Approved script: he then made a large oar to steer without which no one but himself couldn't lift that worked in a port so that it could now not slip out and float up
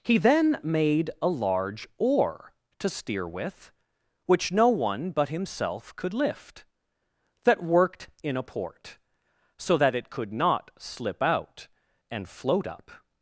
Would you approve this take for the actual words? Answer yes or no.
no